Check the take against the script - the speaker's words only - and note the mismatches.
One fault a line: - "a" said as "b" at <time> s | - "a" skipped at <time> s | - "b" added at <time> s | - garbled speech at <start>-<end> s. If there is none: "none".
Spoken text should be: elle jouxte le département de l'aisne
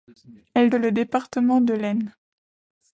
- "jouxte" skipped at 0.7 s